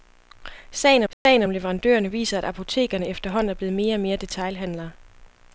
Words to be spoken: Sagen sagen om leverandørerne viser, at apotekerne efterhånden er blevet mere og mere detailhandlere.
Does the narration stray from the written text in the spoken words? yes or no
no